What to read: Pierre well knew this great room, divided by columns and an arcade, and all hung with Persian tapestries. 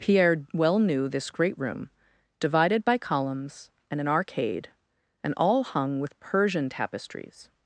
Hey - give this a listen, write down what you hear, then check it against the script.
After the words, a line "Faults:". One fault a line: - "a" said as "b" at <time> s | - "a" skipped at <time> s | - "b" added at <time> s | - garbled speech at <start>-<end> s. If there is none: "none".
Pierre well knew this great room, divided by columns and an arcade, and all hung with Persian tapestries.
Faults:
none